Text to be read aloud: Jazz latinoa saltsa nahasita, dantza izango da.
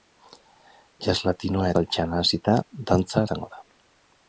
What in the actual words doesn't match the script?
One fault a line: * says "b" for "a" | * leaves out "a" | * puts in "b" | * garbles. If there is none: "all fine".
all fine